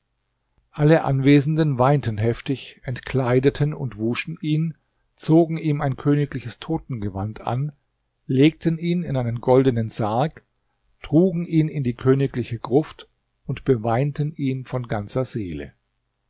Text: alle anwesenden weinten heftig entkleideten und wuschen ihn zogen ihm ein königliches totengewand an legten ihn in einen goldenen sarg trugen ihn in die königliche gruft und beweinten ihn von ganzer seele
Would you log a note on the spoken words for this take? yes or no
no